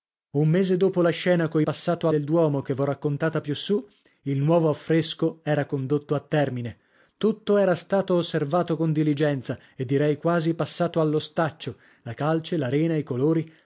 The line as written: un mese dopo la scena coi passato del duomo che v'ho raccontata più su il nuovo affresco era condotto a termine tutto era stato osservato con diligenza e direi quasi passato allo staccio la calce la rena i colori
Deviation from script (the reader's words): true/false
false